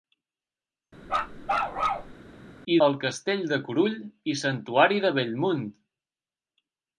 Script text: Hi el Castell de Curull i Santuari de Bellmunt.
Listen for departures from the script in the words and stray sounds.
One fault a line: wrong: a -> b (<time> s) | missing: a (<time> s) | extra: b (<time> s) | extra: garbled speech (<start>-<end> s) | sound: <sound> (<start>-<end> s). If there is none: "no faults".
sound: bark (1.1-2.1 s)